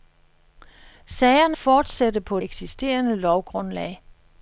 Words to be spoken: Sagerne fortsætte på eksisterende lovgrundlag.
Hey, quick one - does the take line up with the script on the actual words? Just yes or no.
yes